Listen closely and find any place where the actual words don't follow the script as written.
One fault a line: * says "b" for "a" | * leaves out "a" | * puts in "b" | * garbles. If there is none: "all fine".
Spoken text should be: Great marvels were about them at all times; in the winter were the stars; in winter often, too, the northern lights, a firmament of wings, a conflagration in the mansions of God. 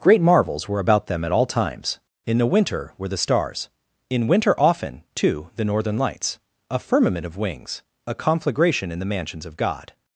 all fine